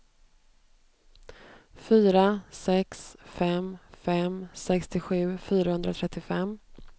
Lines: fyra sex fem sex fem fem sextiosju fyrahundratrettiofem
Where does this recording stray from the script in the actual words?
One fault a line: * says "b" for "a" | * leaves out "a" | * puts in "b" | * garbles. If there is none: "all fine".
* leaves out "sex fem"